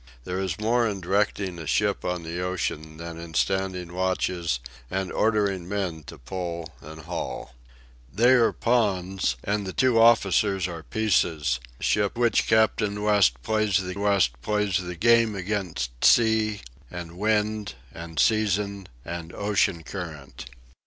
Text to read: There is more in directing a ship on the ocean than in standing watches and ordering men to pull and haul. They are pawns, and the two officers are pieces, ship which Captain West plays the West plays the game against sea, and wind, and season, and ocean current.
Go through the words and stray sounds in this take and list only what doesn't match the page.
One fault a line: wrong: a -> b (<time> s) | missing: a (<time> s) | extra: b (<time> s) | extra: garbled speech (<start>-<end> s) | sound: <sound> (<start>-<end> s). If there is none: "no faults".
no faults